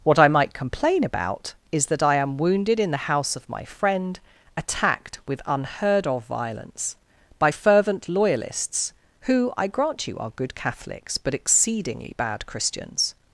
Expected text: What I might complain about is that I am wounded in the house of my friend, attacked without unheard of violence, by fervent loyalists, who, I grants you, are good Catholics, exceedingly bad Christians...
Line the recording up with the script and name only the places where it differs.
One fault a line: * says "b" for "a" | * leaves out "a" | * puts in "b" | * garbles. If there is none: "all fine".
* says "with" for "without"
* says "grant" for "grants"
* puts in "but"